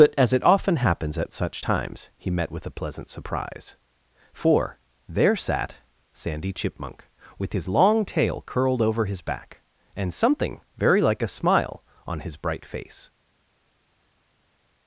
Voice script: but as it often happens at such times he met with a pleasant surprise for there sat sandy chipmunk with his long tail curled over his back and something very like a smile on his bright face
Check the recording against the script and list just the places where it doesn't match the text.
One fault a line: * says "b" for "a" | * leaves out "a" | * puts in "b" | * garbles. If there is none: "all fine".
all fine